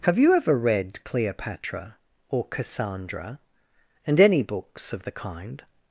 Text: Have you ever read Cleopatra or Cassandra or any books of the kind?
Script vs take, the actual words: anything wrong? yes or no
yes